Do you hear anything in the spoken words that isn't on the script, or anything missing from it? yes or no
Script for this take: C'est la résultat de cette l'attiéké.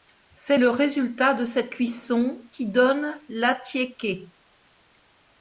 yes